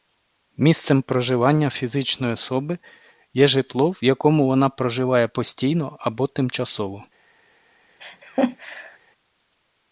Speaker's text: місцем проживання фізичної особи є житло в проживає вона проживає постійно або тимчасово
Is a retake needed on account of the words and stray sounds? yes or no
yes